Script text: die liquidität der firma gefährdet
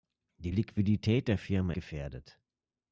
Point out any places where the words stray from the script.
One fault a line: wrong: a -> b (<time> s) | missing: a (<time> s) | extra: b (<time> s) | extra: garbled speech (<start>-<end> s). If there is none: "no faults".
no faults